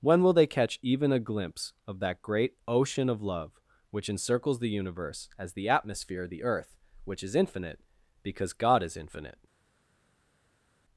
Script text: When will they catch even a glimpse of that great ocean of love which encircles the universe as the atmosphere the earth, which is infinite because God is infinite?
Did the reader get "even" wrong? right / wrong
right